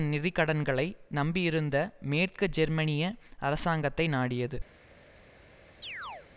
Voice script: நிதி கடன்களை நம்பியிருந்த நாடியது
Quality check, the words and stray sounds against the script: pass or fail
fail